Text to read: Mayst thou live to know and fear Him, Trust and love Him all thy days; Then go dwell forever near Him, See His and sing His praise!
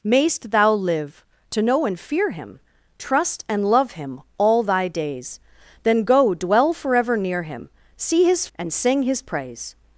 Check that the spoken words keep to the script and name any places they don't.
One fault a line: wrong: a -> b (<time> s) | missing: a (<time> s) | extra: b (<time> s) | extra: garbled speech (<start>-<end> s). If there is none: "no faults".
no faults